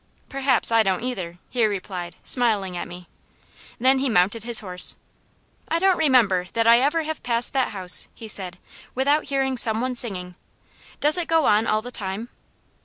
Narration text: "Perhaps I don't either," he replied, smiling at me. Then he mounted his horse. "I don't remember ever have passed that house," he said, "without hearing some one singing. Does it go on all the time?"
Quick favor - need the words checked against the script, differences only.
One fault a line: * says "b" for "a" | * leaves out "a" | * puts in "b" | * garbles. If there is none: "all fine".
* puts in "that I"